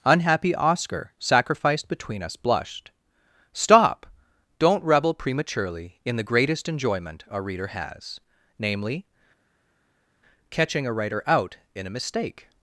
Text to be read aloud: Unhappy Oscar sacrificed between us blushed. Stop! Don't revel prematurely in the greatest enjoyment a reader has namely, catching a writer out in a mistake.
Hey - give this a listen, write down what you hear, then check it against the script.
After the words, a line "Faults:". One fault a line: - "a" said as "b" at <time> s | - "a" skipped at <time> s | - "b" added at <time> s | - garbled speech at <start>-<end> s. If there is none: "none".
Unhappy Oscar sacrificed between us blushed. Stop! Don't revel prematurely in the greatest enjoyment a reader has namely, catching a writer out in a mistake.
Faults:
none